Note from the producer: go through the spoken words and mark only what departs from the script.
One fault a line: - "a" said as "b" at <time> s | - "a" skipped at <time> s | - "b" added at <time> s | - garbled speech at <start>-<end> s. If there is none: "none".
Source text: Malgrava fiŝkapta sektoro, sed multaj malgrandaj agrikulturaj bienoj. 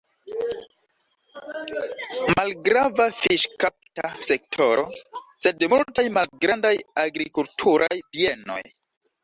none